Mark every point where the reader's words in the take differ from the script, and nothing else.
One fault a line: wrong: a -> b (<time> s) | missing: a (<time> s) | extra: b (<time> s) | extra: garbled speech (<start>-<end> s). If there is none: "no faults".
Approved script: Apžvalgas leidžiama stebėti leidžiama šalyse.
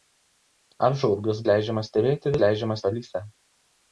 no faults